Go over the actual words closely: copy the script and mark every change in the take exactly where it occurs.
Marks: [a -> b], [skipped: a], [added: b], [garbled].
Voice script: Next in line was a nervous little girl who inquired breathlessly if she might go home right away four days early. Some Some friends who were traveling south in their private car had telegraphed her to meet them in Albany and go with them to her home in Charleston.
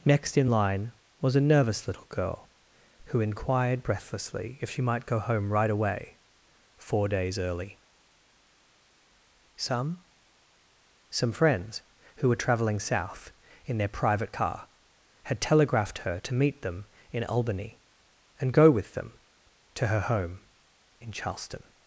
Next in line was a nervous little girl who inquired breathlessly if she might go home right away four days early. Some Some friends who were traveling south in their private car had telegraphed her to meet them in Albany and go with them to her home in Charleston.